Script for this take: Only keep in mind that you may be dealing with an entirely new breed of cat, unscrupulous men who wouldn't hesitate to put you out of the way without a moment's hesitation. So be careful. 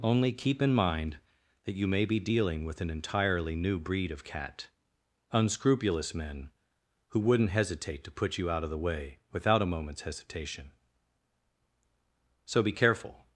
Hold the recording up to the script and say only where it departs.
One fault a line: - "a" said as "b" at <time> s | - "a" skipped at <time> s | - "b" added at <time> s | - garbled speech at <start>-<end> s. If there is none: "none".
none